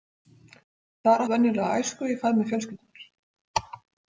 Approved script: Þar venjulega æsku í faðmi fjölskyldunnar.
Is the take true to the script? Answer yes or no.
yes